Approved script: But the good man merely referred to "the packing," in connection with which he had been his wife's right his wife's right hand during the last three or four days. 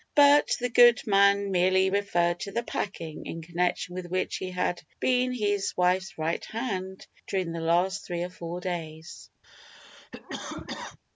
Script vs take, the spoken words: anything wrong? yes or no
yes